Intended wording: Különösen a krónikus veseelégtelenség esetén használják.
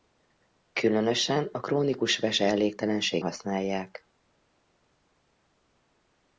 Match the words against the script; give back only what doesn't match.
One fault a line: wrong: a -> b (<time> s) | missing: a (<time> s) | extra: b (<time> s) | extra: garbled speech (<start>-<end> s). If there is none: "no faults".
missing: esetén (3.2 s)